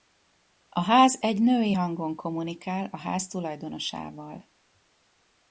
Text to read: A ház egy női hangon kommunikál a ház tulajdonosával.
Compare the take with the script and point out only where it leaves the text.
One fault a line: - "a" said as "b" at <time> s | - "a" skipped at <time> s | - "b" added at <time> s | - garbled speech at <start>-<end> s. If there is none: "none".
none